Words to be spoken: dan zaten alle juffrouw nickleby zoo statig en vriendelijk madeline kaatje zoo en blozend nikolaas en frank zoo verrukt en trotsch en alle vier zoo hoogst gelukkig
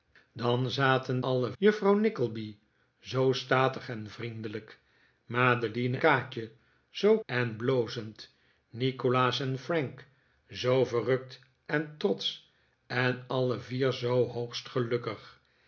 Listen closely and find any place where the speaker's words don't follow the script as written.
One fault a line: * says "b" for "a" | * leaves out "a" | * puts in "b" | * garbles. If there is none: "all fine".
all fine